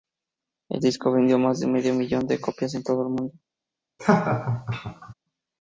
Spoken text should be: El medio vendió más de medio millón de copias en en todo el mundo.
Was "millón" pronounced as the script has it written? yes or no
yes